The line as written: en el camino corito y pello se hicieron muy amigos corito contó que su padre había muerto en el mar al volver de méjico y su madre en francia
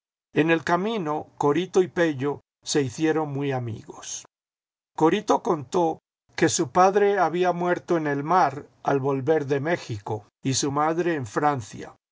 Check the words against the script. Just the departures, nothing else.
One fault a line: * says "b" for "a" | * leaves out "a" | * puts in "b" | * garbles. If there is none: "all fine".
all fine